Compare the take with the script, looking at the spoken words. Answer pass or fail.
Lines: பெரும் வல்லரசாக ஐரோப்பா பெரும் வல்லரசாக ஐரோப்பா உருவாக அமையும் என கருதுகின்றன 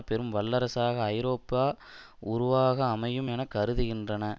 fail